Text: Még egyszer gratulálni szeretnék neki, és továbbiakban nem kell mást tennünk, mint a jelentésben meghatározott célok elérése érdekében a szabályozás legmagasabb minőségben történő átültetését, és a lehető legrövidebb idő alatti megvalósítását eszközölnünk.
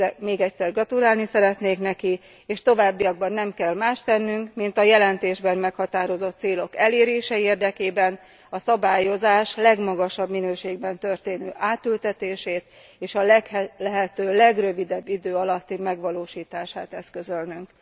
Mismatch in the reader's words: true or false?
false